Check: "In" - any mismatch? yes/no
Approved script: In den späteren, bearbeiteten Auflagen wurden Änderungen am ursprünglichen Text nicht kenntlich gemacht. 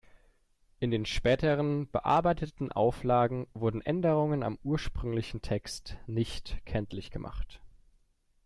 no